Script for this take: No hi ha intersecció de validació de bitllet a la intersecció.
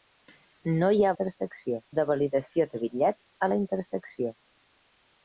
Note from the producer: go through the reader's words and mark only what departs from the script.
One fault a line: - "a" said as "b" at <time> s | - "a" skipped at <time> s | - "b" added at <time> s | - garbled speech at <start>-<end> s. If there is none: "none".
none